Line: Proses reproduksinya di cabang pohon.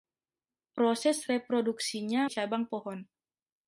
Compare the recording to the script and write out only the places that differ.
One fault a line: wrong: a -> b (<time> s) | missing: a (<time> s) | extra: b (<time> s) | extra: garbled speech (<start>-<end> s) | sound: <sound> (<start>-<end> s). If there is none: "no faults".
no faults